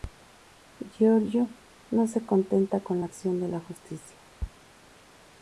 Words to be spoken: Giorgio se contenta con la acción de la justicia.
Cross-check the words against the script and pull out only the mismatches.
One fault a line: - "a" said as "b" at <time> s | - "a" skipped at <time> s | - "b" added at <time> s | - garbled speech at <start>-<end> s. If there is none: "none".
- "no" added at 1.9 s